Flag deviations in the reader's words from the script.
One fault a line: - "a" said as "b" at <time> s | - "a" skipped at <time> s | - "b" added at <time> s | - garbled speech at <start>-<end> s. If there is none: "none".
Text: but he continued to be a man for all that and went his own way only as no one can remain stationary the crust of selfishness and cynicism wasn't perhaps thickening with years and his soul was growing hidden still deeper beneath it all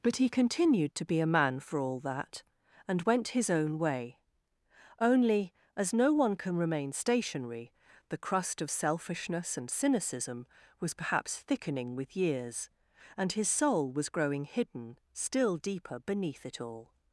- "wasn't" said as "was" at 10.8 s